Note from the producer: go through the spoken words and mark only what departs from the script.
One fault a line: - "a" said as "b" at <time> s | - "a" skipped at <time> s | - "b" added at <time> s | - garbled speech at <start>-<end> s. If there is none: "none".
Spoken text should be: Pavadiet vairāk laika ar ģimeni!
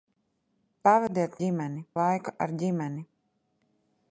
- "vairāk" said as "ģimeni" at 1.4 s